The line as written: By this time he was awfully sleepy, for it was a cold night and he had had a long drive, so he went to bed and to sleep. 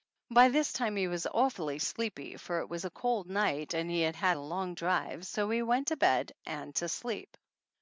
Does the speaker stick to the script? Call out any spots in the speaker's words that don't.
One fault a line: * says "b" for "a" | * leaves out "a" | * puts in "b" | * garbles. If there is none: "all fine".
all fine